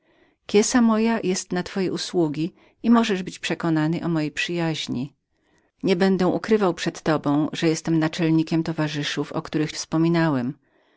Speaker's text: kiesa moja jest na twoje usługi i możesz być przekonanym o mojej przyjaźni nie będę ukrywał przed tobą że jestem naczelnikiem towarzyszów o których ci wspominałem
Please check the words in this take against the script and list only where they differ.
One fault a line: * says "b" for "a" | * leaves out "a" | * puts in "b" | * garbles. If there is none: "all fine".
* leaves out "ci"